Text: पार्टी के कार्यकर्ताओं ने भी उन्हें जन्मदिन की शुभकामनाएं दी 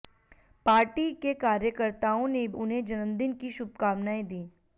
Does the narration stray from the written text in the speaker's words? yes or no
yes